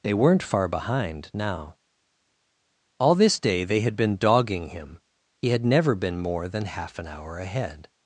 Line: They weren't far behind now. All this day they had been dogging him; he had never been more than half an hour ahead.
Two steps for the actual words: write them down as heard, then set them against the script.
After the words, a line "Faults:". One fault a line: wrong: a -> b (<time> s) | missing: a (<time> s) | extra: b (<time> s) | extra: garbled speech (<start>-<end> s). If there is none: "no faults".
They weren't far behind now. All this day they had been dogging him; he had never been more than half an hour ahead.
Faults:
no faults